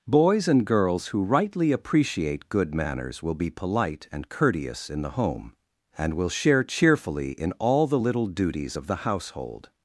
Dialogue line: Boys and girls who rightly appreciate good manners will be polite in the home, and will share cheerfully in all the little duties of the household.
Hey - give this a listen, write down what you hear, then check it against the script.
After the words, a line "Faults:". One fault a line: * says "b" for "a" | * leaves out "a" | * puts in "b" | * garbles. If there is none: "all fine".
Boys and girls who rightly appreciate good manners will be polite and courteous in the home, and will share cheerfully in all the little duties of the household.
Faults:
* puts in "and courteous"